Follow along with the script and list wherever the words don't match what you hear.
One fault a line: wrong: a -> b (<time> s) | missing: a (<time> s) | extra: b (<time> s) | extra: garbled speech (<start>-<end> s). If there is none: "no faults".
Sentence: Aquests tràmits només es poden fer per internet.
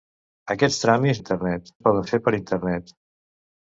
wrong: només -> internet (1.2 s)